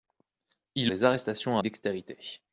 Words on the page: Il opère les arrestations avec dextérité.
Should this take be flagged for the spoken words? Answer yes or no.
yes